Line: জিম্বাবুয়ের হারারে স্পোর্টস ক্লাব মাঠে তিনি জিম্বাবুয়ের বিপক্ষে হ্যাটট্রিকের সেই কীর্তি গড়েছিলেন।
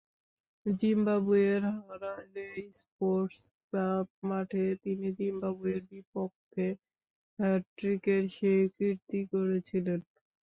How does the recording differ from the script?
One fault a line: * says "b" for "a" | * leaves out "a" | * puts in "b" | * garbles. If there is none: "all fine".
all fine